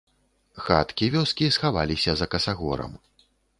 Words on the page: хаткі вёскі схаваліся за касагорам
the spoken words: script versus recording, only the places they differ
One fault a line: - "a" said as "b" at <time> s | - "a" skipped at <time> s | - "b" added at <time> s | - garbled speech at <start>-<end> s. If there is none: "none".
none